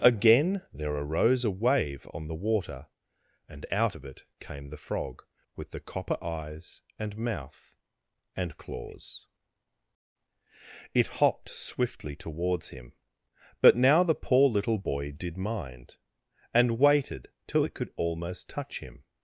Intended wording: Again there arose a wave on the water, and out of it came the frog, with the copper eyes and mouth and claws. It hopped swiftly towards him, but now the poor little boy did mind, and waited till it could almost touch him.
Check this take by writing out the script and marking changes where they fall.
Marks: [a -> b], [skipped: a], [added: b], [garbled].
Again there arose a wave on the water, and out of it came the frog, with the copper eyes and mouth and claws. It hopped swiftly towards him, but now the poor little boy did mind, and waited till it could almost touch him.